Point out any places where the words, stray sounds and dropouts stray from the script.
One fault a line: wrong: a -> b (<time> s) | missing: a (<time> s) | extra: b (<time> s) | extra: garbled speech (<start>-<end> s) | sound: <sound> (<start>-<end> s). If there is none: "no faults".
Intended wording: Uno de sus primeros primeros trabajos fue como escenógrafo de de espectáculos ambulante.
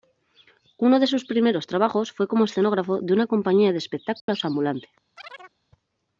missing: primeros (1.7 s)
extra: una compañía (3.1 s)
sound: dropout (4.2-4.3 s)
sound: chirp (5.2-5.6 s)